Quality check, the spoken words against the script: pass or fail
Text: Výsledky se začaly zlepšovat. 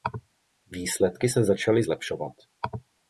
pass